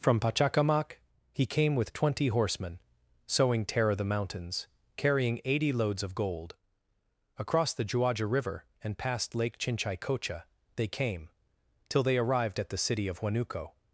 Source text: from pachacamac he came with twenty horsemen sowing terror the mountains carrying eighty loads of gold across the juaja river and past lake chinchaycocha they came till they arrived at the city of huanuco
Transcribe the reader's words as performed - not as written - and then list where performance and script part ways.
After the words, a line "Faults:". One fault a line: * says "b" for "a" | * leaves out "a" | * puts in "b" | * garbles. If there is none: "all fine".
from pachacamac he came with twenty horsemen sowing terror the mountains carrying eighty loads of gold across the juaja river and past lake chinchaycocha they came till they arrived at the city of huanuco
Faults:
all fine